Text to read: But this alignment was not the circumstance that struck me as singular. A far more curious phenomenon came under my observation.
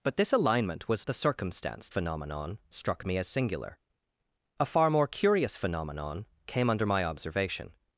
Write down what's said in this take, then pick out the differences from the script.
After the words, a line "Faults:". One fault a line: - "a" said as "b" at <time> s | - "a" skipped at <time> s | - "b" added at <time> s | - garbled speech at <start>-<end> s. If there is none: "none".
But this alignment was the circumstance phenomenon struck me as singular. A far more curious phenomenon came under my observation.
Faults:
- "not" skipped at 1.1 s
- "that" said as "phenomenon" at 1.9 s